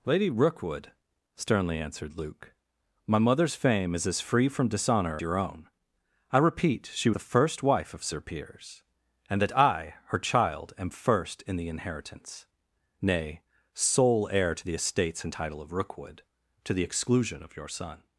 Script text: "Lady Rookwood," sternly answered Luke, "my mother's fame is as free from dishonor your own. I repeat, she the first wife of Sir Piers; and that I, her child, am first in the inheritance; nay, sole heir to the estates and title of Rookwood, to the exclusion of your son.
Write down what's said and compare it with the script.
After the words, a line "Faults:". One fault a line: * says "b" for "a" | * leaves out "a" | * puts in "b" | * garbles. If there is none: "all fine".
"Lady Rookwood," sternly answered Luke, "my mother's fame is as free from dishonor your own. I repeat, she the first wife of Sir Piers; and that I, her child, am first in the inheritance; nay, sole heir to the estates and title of Rookwood, to the exclusion of your son.
Faults:
all fine